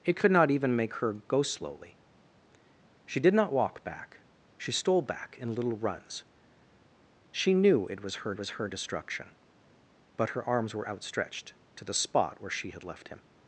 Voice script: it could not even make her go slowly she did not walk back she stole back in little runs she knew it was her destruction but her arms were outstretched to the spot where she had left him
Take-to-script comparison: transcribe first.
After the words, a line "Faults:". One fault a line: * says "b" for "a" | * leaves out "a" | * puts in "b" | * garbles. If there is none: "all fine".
it could not even make her go slowly she did not walk back she stole back in little runs she knew it was her was her destruction but her arms were outstretched to the spot where she had left him
Faults:
* puts in "was her"